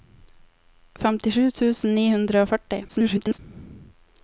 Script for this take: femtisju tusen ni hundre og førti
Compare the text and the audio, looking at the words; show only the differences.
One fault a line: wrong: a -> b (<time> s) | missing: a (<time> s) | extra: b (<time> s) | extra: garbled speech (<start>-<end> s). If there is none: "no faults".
extra: garbled speech (2.9-3.4 s)